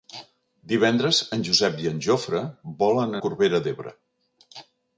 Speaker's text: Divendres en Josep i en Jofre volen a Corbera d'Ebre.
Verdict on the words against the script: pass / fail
pass